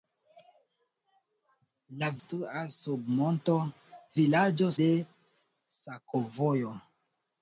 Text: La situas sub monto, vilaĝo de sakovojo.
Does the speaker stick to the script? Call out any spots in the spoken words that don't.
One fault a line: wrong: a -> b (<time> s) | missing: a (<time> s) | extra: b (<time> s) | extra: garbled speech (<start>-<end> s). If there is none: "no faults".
no faults